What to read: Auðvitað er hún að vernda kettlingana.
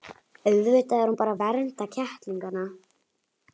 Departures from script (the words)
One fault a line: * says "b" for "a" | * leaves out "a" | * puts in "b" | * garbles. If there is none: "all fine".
* puts in "bara"